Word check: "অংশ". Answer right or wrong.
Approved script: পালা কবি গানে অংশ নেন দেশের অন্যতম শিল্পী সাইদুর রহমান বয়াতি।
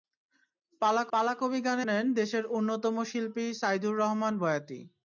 wrong